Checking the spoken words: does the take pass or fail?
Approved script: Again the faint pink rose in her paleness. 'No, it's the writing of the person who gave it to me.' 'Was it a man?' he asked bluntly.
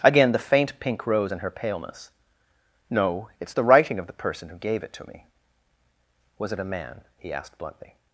pass